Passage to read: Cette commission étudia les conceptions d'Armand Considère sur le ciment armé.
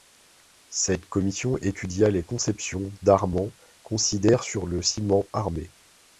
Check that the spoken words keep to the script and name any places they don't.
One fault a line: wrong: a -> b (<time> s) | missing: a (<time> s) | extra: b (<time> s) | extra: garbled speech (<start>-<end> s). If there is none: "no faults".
no faults